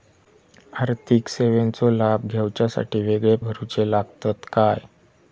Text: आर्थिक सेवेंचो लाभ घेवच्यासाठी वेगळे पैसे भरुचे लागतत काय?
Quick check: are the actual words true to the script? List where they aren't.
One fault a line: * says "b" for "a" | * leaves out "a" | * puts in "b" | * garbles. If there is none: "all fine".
* leaves out "पैसे"